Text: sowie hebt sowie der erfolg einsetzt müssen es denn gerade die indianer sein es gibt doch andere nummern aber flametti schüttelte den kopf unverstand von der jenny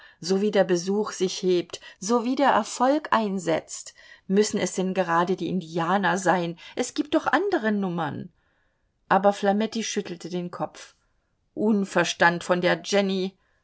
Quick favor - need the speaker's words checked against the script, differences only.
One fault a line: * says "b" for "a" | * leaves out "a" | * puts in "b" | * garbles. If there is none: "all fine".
* puts in "der besuch sich"